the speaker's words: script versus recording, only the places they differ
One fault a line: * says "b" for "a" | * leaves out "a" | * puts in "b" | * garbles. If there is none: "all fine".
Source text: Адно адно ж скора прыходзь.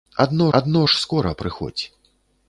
all fine